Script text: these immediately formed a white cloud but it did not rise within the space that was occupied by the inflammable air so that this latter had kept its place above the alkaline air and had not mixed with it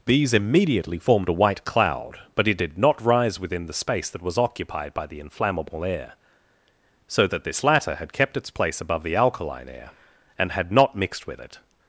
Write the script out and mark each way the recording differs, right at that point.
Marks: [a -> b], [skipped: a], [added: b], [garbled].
these immediately formed a white cloud but it did not rise within the space that was occupied by the inflammable air so that this latter had kept its place above the alkaline air and had not mixed with it